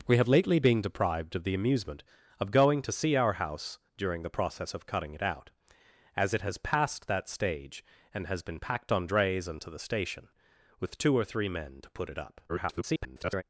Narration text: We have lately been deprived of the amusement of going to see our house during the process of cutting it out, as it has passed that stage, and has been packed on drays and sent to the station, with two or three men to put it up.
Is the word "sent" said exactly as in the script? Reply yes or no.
no